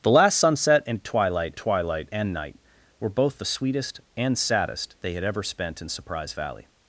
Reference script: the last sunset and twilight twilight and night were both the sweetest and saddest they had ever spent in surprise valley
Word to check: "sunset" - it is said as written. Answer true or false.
true